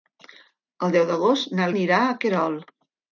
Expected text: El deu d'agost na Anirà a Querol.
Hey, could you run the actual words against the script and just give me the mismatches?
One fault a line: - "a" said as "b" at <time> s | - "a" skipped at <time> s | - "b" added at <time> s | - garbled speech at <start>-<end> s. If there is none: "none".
none